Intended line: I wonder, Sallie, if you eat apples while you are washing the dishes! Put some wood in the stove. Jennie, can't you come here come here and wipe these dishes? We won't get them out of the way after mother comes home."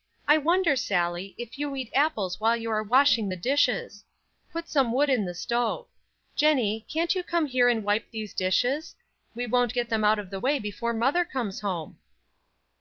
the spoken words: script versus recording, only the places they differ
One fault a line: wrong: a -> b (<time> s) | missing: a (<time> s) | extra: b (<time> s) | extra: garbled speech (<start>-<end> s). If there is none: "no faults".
missing: come here (7.7 s)
wrong: after -> before (10.6 s)